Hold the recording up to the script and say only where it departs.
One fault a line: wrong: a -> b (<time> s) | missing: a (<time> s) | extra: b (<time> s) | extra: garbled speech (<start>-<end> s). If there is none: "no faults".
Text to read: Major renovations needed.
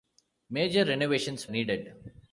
no faults